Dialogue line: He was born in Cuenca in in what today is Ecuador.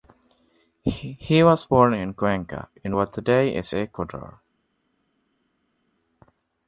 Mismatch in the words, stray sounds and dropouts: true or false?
true